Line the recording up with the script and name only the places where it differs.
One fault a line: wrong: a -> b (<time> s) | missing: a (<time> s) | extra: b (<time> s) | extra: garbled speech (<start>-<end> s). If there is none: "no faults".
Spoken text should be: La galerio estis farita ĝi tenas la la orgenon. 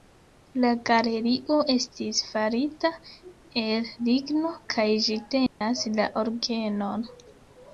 extra: el ligno kaj (3.6 s)
missing: la (6.1 s)